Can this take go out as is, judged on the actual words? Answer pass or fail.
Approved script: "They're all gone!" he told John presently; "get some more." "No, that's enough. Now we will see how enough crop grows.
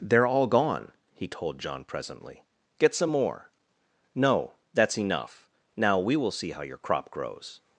fail